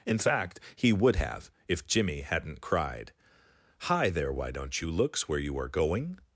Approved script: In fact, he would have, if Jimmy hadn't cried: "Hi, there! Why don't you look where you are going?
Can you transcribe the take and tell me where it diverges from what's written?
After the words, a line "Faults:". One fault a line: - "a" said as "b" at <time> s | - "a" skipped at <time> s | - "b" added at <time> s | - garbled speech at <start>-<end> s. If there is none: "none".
In fact, he would have, if Jimmy hadn't cried: "Hi, there! Why don't you looks where you are going?
Faults:
- "look" said as "looks" at 4.9 s